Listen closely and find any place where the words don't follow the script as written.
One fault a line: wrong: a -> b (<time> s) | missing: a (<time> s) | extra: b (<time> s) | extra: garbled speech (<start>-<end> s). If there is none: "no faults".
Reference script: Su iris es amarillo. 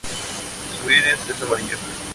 no faults